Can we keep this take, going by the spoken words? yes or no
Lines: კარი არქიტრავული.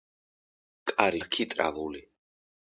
yes